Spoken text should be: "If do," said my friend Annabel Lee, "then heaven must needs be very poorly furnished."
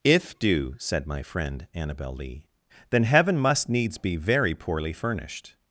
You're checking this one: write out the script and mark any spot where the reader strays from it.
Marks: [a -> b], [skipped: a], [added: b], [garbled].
"If do," said my friend Annabel Lee, "then heaven must needs be very poorly furnished."